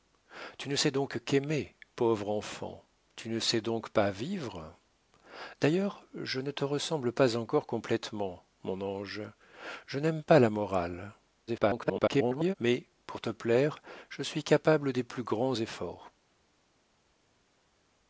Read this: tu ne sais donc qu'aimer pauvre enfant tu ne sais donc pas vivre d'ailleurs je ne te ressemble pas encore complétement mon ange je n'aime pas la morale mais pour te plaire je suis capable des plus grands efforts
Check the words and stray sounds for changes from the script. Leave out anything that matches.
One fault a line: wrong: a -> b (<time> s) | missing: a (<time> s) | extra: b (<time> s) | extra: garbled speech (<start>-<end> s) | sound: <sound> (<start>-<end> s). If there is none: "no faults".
extra: garbled speech (11.5-12.5 s)